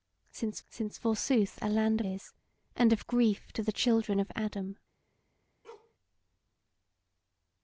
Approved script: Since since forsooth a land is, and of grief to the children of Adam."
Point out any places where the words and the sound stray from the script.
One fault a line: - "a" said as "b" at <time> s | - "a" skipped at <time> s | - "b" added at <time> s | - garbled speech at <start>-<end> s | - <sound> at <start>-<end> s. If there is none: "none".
- bark at 5.6-5.9 s